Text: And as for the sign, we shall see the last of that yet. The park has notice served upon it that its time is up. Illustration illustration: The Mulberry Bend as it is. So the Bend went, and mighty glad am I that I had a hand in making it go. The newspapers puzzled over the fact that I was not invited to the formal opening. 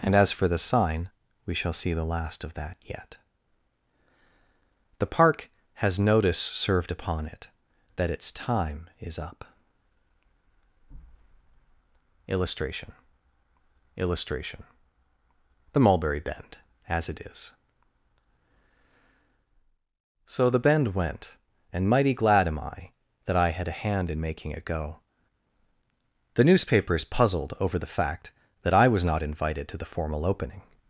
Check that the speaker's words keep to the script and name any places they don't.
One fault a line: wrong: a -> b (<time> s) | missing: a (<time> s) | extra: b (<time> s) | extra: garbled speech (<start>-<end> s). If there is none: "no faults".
no faults